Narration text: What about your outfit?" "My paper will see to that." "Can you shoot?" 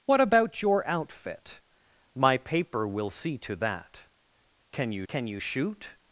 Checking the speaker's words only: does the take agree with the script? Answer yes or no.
no